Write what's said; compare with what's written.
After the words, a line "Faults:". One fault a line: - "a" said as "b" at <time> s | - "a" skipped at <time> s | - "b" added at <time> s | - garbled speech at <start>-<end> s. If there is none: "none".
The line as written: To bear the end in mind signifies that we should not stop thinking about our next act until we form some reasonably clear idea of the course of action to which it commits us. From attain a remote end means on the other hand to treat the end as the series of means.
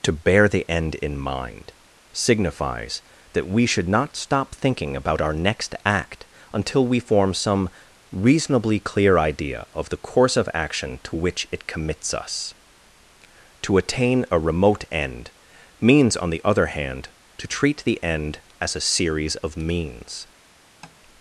To bear the end in mind signifies that we should not stop thinking about our next act until we form some reasonably clear idea of the course of action to which it commits us. To attain a remote end means on the other hand to treat the end as a series of means.
Faults:
- "From" said as "To" at 13.6 s
- "the" said as "a" at 18.8 s